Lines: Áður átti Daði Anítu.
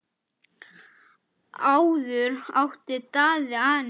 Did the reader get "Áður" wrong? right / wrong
right